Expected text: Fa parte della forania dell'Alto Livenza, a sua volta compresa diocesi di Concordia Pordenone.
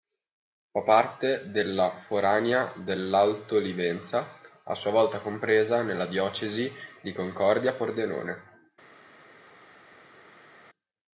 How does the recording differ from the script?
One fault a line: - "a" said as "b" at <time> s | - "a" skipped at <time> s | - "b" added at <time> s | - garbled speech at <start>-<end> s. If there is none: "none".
- "nella" added at 5.8 s